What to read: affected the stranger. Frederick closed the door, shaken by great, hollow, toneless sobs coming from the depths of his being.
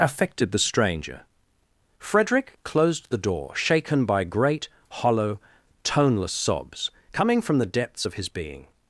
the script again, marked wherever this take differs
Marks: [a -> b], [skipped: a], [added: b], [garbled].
affected the stranger. Frederick closed the door, shaken by great, hollow, toneless sobs coming from the depths of his being.